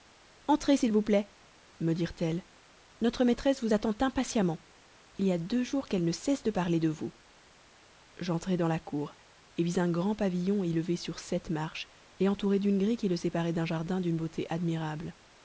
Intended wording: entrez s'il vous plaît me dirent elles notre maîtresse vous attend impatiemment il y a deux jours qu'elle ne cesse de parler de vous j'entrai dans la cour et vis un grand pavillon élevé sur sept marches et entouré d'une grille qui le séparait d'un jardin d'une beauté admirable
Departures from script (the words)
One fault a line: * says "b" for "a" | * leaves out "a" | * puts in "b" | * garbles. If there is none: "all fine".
all fine